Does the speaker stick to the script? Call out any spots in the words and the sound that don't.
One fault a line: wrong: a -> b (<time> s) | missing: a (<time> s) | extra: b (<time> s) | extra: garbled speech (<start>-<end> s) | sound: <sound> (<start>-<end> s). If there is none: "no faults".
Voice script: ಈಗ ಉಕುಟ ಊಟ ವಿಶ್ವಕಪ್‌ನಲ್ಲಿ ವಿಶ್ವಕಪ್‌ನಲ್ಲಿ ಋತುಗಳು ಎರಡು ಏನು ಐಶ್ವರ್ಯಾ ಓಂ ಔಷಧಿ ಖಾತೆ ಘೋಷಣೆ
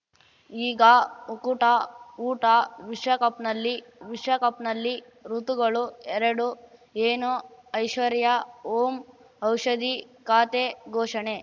no faults